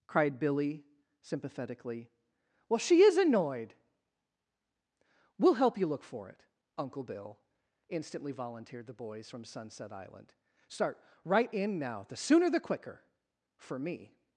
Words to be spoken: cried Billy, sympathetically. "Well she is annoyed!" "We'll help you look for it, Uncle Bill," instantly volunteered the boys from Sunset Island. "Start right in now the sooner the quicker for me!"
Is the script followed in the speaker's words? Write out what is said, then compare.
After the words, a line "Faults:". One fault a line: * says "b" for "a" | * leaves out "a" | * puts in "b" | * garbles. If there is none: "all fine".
cried Billy, sympathetically. "Well she is annoyed!" "We'll help you look for it, Uncle Bill," instantly volunteered the boys from Sunset Island. "Start right in now the sooner the quicker for me!"
Faults:
all fine